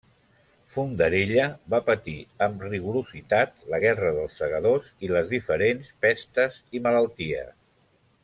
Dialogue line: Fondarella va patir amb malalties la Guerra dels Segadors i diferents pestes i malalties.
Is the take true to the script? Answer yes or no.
no